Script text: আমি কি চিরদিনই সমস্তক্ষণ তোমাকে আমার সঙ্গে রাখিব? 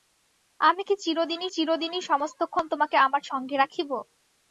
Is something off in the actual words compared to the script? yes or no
yes